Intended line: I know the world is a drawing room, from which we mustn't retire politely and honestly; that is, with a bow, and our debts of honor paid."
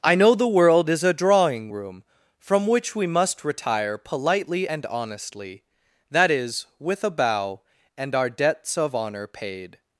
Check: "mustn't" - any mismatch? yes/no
yes